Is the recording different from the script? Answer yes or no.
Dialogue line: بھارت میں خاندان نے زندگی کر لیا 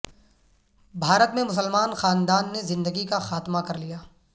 yes